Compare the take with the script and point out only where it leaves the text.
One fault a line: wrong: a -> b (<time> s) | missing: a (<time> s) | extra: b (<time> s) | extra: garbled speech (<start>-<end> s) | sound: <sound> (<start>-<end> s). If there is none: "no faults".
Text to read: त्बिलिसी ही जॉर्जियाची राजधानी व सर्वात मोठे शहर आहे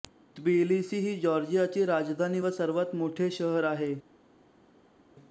no faults